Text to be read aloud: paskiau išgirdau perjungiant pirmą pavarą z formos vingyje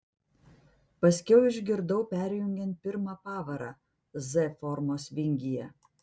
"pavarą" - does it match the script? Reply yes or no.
yes